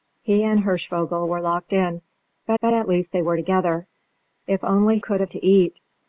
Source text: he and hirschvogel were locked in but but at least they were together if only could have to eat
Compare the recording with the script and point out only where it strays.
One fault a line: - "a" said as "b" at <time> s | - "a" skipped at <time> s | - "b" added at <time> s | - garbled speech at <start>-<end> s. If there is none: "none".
none